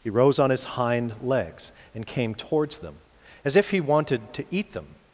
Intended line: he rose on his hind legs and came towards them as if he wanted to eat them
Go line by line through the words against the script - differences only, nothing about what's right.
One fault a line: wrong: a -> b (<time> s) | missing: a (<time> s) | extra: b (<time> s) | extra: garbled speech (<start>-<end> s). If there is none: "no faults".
no faults